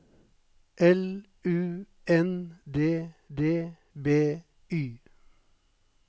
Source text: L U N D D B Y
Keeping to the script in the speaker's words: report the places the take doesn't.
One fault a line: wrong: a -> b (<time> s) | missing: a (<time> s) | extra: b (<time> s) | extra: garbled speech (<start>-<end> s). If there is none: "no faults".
no faults